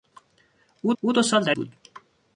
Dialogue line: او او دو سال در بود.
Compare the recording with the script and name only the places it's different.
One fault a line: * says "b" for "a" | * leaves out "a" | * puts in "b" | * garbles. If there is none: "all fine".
all fine